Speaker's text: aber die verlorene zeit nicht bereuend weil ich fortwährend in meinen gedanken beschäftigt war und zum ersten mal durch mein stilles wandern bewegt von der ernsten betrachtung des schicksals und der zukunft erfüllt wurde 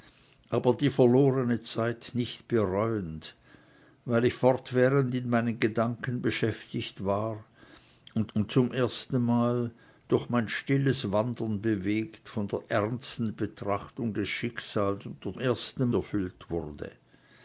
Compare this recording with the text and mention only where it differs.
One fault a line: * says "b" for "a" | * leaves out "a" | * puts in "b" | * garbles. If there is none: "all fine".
* puts in "und"
* says "ersten" for "zukunft"